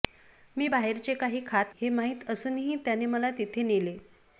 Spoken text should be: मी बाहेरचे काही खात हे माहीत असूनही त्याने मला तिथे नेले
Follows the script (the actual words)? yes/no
yes